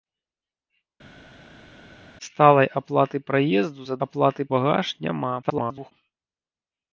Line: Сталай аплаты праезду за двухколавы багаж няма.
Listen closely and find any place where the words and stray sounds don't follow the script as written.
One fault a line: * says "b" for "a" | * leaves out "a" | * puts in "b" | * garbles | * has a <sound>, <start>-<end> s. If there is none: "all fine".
* says "аплаты" for "двухколавы"
* garbles